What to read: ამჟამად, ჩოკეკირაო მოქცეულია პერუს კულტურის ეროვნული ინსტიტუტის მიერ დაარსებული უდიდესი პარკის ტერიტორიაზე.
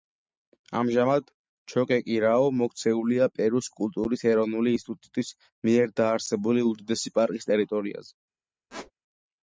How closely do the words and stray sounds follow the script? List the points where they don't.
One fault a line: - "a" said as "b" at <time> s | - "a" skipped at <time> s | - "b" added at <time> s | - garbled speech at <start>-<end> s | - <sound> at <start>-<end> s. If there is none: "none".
- squeak at 8.7-8.9 s